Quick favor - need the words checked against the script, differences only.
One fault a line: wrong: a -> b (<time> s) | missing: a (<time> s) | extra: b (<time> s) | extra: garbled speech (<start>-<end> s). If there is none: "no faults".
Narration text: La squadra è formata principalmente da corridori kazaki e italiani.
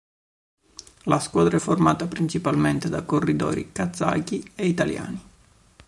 no faults